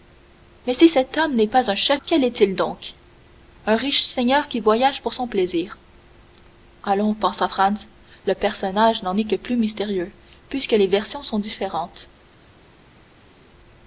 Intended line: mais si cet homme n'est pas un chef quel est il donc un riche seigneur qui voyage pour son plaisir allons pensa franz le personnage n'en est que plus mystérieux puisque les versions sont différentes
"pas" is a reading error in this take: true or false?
false